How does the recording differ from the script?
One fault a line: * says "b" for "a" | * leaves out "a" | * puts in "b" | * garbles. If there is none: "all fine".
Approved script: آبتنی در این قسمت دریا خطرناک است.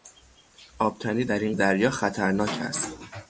* leaves out "قسمت"